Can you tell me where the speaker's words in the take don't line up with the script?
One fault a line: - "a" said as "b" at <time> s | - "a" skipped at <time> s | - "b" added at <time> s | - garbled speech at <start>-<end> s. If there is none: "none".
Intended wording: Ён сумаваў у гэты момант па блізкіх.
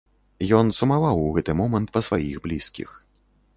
- "сваіх" added at 2.1 s